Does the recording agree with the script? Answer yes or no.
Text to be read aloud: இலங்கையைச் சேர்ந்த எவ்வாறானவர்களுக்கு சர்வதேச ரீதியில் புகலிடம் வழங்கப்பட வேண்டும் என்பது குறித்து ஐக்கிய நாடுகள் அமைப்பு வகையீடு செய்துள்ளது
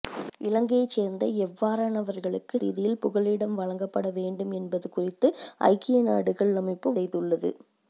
no